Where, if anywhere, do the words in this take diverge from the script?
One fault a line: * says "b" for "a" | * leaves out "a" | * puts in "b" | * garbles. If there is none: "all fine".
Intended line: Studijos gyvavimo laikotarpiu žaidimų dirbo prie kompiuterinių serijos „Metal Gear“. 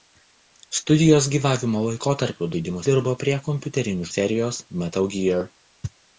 all fine